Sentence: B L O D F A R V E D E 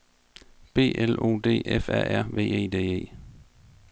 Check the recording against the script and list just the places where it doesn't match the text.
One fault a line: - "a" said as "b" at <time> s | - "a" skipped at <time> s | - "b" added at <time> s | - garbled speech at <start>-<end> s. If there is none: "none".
none